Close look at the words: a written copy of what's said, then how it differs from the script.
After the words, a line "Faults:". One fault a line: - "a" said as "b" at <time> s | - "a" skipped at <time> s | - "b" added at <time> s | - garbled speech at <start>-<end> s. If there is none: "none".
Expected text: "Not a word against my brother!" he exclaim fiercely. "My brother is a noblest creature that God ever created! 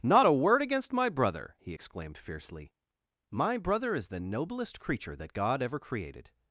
"Not a word against my brother!" he exclaimed fiercely. "My brother is the noblest creature that God ever created!
Faults:
- "exclaim" said as "exclaimed" at 1.7 s
- "a" said as "the" at 4.1 s